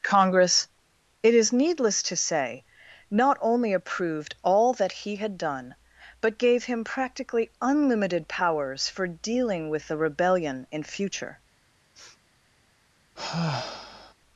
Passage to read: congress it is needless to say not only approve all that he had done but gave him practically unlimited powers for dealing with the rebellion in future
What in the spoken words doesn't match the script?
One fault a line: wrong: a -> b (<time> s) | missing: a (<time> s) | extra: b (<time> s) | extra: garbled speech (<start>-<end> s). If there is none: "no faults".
wrong: approve -> approved (3.7 s)